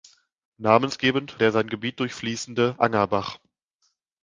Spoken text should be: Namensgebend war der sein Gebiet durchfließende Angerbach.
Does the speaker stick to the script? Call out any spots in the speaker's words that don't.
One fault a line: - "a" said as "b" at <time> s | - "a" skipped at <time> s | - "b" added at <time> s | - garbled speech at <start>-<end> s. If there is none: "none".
- "war" skipped at 1.4 s